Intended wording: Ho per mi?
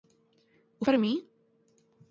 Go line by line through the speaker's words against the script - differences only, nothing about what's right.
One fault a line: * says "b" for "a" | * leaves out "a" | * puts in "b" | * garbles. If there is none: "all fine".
all fine